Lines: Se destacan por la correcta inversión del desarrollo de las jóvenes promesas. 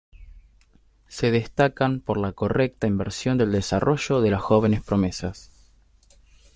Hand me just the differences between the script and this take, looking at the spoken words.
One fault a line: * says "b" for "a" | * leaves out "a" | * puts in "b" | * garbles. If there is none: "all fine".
all fine